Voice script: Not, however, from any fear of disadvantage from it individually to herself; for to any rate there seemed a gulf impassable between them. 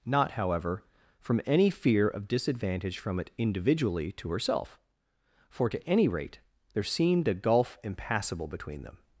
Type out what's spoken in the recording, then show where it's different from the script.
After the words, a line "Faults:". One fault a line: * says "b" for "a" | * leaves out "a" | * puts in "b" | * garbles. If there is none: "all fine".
Not, however, from any fear of disadvantage from it individually to herself; for to any rate there seemed a gulf impassable between them.
Faults:
all fine